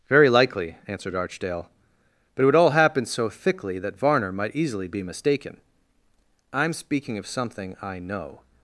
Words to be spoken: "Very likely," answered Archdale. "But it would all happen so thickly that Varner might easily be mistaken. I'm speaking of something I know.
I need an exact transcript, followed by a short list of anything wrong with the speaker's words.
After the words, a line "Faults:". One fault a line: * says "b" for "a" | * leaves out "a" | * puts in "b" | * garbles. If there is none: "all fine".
"Very likely," answered Archdale. "But it would all happen so thickly that Varner might easily be mistaken. I'm speaking of something I know.
Faults:
all fine